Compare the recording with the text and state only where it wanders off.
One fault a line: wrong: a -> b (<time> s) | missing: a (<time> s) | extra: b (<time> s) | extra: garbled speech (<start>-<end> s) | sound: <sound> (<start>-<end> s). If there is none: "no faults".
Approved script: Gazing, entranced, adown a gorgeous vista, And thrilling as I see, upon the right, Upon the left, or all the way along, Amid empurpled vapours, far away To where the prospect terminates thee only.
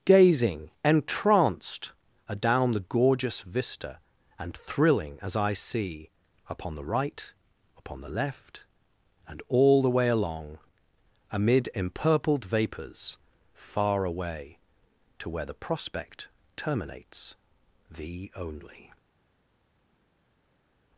wrong: a -> the (2.7 s)
wrong: or -> and (9.3 s)